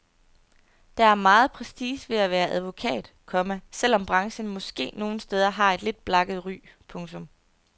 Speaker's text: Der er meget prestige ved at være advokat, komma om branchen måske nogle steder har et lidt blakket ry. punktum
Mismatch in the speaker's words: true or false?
true